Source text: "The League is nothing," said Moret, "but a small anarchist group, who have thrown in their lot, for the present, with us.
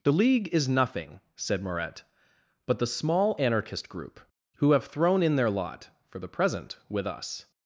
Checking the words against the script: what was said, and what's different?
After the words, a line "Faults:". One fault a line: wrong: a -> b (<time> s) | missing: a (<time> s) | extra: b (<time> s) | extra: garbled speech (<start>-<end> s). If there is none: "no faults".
"The League is nothing," said Moret, "but the small anarchist group, who have thrown in their lot, for the present, with us.
Faults:
wrong: a -> the (2.8 s)